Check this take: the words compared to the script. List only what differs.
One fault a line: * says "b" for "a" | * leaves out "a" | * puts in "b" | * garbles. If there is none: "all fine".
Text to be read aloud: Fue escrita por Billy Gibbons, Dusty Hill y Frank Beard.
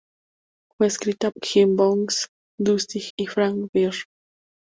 * leaves out "por Billy"
* leaves out "Hill"